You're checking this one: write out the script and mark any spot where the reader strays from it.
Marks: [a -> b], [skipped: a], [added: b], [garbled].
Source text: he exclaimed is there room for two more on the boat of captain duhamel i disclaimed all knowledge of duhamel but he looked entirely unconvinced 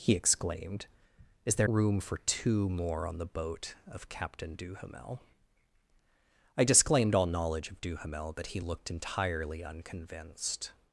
he exclaimed is there room for two more on the boat of captain duhamel i disclaimed all knowledge of duhamel but he looked entirely unconvinced